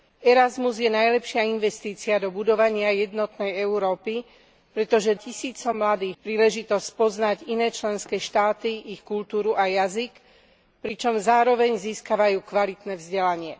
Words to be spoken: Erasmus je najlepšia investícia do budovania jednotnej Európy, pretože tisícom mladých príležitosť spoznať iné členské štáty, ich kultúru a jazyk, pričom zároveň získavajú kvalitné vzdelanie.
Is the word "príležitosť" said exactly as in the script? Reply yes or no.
yes